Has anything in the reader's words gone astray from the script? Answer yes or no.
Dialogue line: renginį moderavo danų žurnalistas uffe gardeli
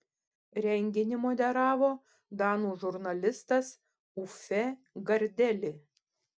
no